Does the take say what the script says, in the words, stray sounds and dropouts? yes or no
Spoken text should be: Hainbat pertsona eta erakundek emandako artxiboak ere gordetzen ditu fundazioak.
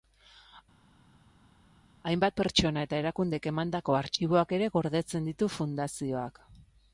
yes